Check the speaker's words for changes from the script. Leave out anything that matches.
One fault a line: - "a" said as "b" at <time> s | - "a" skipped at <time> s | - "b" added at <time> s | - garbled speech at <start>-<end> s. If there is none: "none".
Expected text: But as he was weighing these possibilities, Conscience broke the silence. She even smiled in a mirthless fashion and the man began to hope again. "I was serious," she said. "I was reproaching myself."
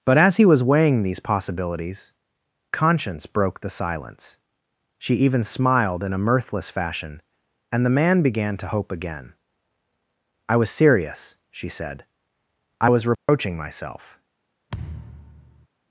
none